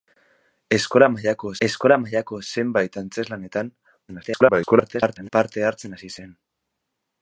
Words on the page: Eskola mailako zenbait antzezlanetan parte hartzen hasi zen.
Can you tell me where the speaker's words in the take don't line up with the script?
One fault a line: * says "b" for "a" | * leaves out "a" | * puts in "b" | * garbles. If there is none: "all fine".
* puts in "eskola mailako"
* garbles